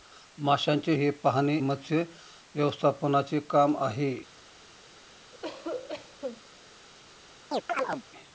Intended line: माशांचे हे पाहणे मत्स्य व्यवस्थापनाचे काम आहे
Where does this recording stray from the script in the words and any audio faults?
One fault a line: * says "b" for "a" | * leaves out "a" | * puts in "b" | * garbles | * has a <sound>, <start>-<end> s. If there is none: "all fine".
* has a cough, 5.3-6.4 s
* has a chirp, 7.5-8.0 s